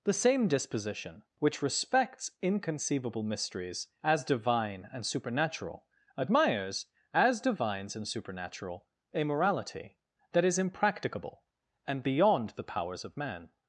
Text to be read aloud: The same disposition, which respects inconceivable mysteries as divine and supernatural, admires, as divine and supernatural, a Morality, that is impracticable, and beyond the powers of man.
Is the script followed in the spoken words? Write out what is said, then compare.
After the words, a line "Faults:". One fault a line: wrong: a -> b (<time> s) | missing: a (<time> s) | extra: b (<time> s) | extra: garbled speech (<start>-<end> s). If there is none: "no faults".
The same disposition, which respects inconceivable mysteries as divine and supernatural, admires, as divines and supernatural, a Morality, that is impracticable, and beyond the powers of man.
Faults:
wrong: divine -> divines (7.4 s)